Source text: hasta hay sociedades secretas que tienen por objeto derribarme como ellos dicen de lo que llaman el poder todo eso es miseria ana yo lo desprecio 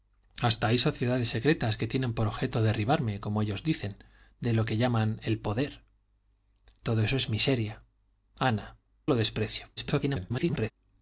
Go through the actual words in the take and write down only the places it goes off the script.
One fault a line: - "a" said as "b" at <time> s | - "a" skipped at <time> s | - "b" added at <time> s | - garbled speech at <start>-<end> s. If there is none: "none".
- "yo" skipped at 8.8 s
- garbled speech at 9.8-10.7 s